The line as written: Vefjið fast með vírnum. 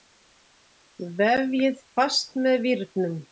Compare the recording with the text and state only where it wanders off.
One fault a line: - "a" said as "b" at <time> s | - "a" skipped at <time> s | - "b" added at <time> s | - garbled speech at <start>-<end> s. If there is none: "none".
none